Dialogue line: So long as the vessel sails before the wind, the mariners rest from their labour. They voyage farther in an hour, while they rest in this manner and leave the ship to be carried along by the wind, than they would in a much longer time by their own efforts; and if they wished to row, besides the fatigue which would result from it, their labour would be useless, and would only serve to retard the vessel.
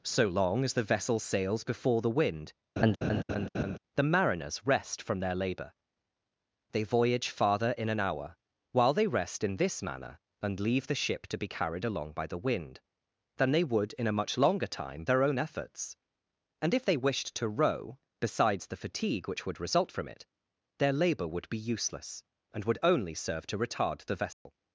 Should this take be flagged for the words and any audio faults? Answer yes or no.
yes